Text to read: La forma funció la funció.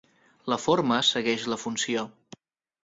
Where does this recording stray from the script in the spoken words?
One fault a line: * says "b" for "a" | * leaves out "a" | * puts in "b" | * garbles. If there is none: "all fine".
* says "segueix" for "funció"